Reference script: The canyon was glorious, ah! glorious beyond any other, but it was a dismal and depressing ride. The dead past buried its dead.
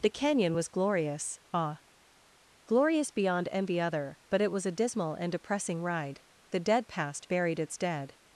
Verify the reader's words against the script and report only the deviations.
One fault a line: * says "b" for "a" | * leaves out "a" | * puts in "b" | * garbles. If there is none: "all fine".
* says "envy" for "any"